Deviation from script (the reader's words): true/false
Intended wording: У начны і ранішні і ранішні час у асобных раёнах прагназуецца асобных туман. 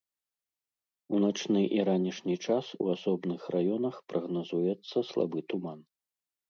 true